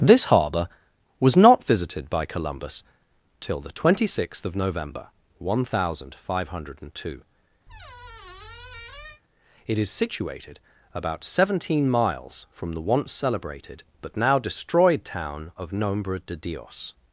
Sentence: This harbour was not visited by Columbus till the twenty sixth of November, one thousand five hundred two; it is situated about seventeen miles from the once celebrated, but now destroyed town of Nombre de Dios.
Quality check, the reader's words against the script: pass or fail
pass